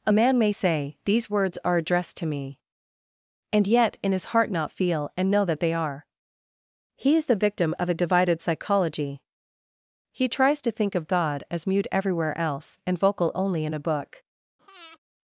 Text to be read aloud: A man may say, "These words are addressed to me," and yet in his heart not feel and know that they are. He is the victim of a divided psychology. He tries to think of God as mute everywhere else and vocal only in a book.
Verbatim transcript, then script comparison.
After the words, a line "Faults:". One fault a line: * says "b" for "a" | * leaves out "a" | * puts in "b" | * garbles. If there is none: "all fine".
A man may say, "These words are addressed to me," and yet in his heart not feel and know that they are. He is the victim of a divided psychology. He tries to think of God as mute everywhere else and vocal only in a book.
Faults:
all fine